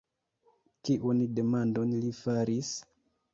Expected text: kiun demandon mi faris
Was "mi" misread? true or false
true